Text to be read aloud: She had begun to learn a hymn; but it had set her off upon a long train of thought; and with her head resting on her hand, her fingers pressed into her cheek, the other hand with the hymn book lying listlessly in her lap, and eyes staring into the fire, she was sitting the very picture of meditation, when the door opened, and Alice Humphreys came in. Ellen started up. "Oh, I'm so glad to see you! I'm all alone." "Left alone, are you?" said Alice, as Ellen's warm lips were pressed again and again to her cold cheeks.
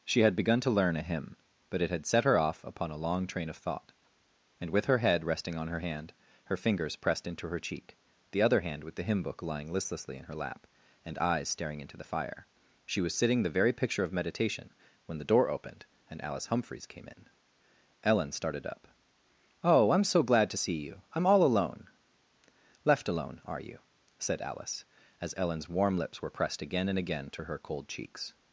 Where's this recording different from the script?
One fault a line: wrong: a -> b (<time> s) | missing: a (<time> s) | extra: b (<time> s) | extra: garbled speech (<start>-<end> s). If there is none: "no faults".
no faults